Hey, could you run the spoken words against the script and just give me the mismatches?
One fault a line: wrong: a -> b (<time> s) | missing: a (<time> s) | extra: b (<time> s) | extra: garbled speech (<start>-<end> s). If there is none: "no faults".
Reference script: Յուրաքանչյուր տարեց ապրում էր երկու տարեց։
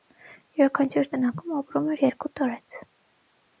wrong: տարեց -> տնակում (1.2 s)